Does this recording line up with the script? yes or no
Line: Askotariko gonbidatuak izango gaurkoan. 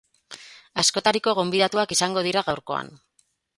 no